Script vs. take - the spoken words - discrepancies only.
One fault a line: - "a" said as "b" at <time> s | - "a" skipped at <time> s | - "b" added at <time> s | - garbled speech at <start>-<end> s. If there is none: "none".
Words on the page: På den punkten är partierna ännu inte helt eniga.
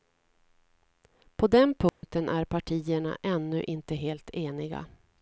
none